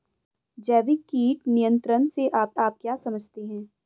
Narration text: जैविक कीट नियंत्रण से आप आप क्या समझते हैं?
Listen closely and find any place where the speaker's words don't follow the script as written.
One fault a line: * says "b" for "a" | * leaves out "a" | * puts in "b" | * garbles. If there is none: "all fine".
all fine